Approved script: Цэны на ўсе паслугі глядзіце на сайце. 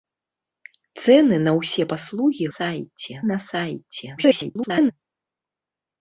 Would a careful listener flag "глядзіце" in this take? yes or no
yes